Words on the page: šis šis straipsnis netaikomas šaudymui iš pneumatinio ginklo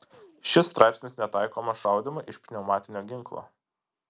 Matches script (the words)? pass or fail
fail